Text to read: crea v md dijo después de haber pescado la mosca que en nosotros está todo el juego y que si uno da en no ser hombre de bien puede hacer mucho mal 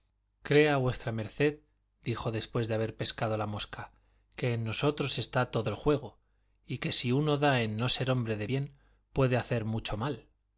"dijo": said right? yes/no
yes